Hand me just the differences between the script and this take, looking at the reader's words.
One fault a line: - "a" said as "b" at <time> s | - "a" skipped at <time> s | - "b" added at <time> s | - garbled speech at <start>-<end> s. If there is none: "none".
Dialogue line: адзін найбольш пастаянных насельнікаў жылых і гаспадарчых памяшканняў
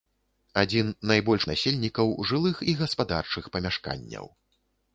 - "пастаянных" skipped at 1.4 s